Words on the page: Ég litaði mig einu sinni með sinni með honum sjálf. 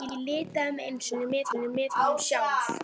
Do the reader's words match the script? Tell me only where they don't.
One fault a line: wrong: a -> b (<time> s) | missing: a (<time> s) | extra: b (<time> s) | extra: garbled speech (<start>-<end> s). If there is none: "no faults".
no faults